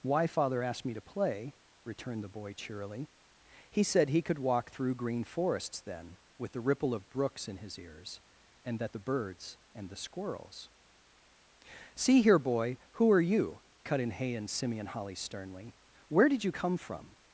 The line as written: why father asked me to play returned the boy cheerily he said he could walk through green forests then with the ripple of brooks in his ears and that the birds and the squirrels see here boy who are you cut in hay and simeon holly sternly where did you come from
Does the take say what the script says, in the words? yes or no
yes